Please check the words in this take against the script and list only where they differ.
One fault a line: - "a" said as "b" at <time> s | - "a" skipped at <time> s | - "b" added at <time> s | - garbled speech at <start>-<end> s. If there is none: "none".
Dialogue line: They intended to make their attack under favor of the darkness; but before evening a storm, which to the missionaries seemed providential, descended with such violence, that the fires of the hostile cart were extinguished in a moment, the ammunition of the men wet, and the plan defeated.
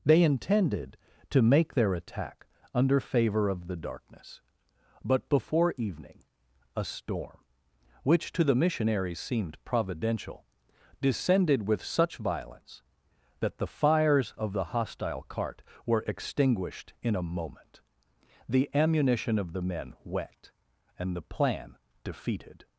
none